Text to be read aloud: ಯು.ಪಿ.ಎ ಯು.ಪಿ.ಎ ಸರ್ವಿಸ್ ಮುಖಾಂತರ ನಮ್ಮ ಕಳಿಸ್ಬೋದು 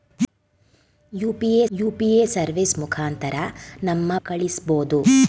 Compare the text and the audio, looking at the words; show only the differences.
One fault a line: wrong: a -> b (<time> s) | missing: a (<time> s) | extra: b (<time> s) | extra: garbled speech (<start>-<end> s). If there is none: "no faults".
no faults